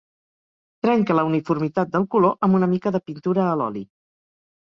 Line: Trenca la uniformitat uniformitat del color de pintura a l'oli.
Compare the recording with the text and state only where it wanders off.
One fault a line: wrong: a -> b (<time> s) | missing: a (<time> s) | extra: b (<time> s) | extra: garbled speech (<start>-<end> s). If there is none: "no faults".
missing: uniformitat (1.9 s)
extra: amb una mica (2.5 s)